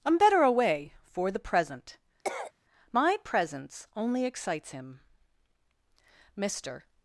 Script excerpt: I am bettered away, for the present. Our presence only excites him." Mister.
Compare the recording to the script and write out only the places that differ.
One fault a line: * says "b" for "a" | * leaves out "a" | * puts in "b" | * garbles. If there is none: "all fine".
* says "better" for "bettered"
* says "My" for "Our"